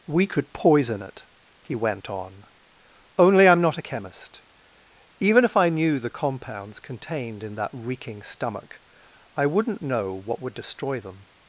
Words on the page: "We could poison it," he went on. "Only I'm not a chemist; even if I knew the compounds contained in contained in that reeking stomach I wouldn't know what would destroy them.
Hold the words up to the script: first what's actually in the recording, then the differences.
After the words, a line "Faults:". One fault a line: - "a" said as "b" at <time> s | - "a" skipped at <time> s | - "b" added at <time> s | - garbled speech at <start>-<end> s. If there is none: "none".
"We could poison it," he went on. "Only I'm not a chemist; even if I knew the compounds contained in that reeking stomach I wouldn't know what would destroy them.
Faults:
- "contained in" skipped at 7.5 s